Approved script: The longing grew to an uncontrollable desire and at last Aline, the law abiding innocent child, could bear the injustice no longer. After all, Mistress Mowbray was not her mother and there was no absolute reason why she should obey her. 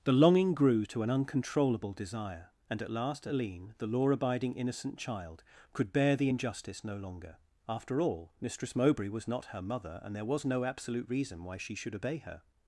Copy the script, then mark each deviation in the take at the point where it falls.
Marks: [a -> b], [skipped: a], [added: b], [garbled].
The longing grew to an uncontrollable desire and at last Aline, the law abiding innocent child, could bear the injustice no longer. After all, Mistress Mowbray was not her mother and there was no absolute reason why she should obey her.